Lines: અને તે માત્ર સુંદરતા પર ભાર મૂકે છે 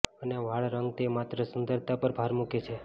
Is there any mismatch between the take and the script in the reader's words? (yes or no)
yes